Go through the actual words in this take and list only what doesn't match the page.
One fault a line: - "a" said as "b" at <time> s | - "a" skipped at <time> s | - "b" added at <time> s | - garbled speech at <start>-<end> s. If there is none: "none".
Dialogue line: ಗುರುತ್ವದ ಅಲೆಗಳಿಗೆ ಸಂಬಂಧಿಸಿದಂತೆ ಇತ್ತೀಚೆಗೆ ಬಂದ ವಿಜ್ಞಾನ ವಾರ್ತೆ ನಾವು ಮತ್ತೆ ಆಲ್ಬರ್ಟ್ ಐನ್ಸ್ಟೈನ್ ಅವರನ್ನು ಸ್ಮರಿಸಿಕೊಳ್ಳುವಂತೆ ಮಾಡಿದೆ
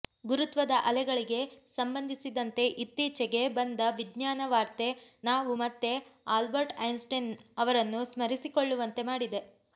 none